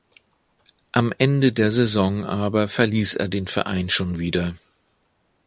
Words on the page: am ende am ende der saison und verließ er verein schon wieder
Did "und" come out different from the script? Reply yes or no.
yes